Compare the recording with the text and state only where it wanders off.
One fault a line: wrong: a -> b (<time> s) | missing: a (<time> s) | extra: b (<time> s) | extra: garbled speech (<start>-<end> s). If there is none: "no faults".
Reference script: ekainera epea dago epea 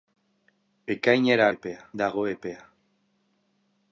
no faults